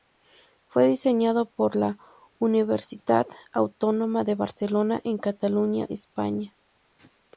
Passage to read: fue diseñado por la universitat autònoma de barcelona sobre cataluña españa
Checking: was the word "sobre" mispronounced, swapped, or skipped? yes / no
yes